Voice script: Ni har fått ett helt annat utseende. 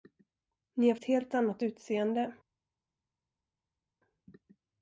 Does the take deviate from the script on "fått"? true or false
true